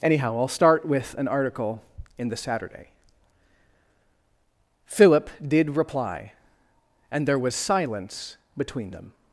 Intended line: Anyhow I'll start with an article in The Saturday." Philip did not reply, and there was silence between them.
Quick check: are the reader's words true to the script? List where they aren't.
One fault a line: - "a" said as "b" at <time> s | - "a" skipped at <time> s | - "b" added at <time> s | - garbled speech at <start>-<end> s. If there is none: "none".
- "not" skipped at 5.8 s